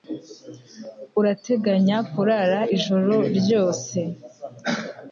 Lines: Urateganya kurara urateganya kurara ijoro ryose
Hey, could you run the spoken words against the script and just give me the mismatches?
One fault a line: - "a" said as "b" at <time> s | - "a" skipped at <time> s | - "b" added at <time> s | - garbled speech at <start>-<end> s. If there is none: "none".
- "urateganya kurara" skipped at 2.6 s